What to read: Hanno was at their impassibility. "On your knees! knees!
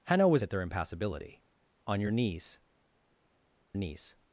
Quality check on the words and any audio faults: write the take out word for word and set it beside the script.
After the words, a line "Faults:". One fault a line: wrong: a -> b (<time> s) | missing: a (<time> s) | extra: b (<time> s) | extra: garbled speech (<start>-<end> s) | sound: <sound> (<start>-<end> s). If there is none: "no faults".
Hanno was at their impassibility. "On your knees! knees!
Faults:
no faults